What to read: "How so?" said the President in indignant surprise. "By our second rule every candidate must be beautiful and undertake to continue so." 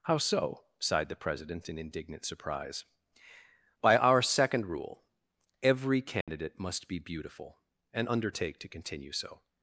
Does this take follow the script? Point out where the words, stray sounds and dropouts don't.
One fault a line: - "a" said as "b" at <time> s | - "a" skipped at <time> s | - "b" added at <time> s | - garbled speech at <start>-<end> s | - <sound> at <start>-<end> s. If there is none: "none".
- "said" said as "sighed" at 0.8 s
- dropout at 6.2-6.3 s